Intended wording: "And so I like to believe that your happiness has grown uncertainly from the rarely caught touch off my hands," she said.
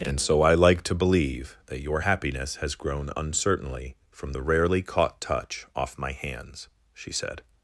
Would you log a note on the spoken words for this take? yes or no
no